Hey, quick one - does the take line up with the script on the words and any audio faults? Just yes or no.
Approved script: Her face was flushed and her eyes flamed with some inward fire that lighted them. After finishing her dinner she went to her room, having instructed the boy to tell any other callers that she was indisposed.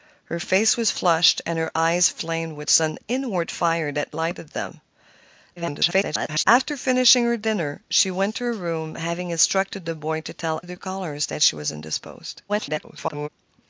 no